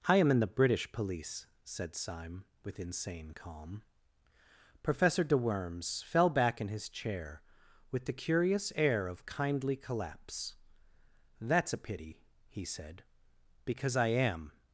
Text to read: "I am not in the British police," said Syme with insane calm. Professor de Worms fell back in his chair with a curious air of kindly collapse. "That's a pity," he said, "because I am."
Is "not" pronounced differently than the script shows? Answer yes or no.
yes